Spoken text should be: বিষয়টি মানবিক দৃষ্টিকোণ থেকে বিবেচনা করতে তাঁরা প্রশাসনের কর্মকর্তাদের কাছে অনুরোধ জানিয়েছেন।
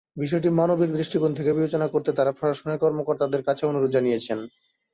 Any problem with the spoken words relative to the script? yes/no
no